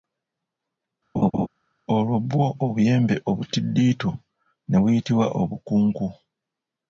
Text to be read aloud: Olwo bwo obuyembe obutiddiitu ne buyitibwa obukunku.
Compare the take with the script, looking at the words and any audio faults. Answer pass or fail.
fail